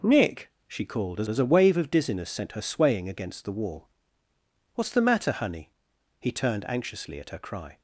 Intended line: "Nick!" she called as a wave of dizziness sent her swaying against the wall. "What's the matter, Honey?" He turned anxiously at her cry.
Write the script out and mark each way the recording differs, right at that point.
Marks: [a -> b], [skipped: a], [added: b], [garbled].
"Nick!" she called as [added: as] a wave of dizziness sent her swaying against the wall. "What's the matter, Honey?" He turned anxiously at her cry.